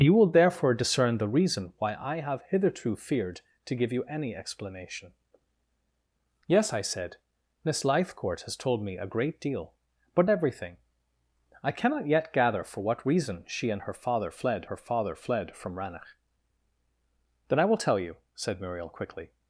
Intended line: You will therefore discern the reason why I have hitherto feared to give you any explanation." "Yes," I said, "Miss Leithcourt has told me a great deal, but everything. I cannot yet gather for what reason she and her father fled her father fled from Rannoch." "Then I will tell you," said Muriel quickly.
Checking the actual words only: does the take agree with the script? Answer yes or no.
yes